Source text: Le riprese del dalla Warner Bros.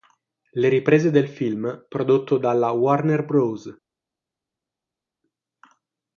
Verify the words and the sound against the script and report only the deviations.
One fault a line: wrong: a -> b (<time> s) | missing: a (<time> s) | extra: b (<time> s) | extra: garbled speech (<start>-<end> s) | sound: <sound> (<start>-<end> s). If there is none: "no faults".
extra: film prodotto (1.3 s)